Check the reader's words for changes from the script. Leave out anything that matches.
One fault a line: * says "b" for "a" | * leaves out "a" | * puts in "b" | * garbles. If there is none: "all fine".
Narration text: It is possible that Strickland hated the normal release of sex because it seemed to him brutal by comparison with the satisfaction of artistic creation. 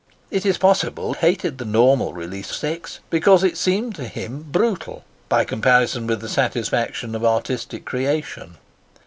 * leaves out "that Strickland"
* leaves out "of"